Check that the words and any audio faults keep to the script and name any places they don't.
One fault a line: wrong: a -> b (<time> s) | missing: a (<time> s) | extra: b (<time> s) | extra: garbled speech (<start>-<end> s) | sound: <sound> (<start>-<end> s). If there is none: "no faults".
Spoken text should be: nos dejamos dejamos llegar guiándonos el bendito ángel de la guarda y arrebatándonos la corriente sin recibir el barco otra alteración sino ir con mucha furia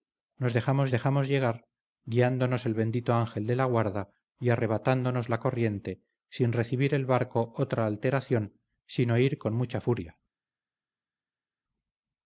no faults